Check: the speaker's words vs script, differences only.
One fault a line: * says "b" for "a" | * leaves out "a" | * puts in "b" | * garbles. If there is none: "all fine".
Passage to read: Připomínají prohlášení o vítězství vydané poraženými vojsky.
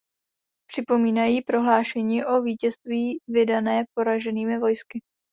all fine